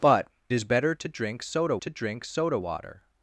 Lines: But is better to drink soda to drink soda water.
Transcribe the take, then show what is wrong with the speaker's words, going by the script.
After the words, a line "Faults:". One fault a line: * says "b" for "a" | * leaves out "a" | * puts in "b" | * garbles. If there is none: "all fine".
But is better to drink soda to drink soda water.
Faults:
all fine